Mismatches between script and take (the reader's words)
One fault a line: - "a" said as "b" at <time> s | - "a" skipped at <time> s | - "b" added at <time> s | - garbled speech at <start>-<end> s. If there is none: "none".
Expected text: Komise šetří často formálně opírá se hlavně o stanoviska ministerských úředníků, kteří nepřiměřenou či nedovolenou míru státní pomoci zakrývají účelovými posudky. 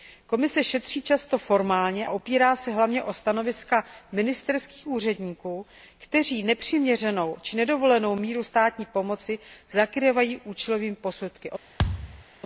none